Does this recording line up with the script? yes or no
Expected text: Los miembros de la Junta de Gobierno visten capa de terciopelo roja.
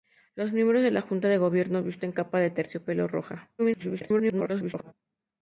no